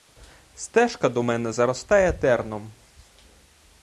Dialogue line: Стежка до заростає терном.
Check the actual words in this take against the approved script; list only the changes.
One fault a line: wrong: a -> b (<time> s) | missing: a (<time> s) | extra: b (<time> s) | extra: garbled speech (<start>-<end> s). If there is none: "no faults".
extra: мене (1.2 s)